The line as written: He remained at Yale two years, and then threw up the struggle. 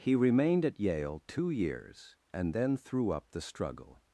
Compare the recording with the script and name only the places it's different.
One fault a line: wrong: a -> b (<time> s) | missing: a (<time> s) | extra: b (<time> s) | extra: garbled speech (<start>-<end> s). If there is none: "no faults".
no faults